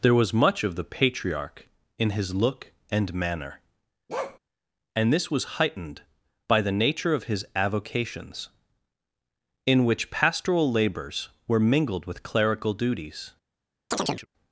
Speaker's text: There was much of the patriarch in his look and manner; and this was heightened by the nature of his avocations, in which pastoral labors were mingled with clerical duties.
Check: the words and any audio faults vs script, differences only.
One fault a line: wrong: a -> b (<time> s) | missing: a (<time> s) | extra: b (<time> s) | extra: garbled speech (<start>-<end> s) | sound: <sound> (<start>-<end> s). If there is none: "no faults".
sound: bark (4.1-4.4 s)
sound: chirp (13.9-14.3 s)